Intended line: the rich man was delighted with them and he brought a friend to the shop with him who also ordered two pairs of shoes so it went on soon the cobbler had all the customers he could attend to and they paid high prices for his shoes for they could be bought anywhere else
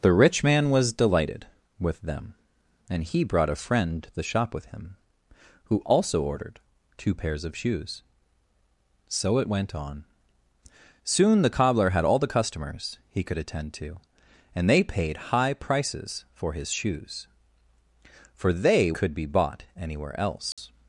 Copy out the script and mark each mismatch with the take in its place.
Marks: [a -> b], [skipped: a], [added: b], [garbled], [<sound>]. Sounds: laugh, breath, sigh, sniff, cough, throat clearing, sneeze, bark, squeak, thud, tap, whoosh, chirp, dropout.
the rich man was delighted with them and he brought a friend to the shop with him who also ordered two pairs of shoes so it went on soon the cobbler had all the customers he could attend to and they paid high prices for his shoes for they could be bought anywhere else [dropout]